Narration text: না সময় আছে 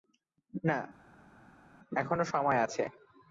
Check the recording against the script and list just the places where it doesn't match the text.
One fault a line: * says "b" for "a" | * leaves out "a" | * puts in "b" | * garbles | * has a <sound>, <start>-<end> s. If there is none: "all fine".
* puts in "এখনো"